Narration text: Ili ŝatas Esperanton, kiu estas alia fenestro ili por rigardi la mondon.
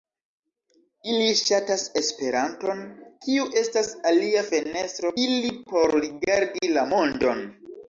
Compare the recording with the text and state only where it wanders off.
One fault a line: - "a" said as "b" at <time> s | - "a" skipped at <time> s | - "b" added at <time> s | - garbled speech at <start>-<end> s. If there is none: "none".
none